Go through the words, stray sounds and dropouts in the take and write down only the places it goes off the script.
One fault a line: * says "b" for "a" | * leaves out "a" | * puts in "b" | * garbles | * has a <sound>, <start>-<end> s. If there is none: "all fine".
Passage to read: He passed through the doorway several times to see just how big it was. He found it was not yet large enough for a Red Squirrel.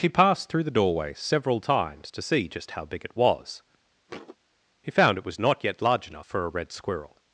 * has a thud, 4.1-4.4 s